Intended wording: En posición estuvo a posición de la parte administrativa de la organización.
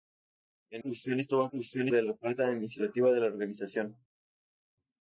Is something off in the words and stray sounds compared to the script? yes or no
no